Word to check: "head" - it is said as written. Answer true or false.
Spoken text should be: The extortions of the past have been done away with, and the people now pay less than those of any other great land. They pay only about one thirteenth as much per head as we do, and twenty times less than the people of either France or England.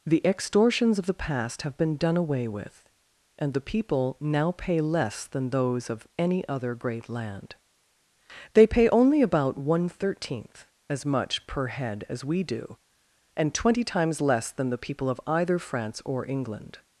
true